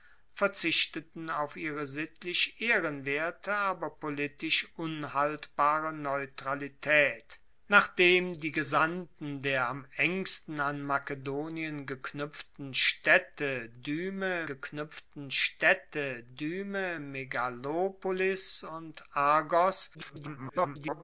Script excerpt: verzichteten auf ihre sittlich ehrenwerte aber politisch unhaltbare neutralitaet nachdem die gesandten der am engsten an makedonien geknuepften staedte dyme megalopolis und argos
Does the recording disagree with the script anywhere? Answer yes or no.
yes